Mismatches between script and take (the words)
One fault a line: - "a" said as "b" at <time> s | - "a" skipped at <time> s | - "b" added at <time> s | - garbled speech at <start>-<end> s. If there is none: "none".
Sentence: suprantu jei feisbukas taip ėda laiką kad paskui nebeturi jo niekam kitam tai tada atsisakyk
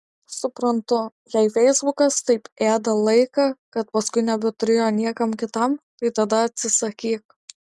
none